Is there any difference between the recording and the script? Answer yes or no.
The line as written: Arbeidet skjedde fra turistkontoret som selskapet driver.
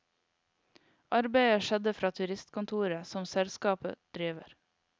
no